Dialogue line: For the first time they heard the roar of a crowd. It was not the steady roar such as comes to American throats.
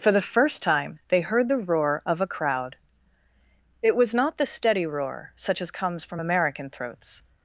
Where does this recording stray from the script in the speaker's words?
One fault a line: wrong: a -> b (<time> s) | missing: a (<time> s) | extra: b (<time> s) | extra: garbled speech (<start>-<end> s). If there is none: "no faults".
wrong: to -> from (6.1 s)